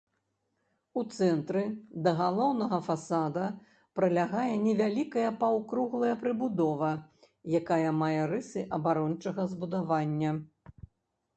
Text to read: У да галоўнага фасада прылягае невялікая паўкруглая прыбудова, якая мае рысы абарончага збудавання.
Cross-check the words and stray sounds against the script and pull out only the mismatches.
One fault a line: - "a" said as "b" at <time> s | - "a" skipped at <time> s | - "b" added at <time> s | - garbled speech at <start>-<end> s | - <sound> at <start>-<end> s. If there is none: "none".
- "цэнтры" added at 1.1 s